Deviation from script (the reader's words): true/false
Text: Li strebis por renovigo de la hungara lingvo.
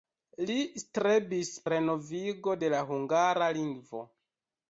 true